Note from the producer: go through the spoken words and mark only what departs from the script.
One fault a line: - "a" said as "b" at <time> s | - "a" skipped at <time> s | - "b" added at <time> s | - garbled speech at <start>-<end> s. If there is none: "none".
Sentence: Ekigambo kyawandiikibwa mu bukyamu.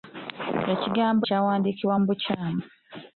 none